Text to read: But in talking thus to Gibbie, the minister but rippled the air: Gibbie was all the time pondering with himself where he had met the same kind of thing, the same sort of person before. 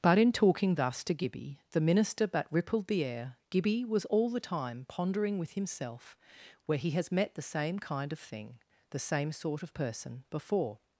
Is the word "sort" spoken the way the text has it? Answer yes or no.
yes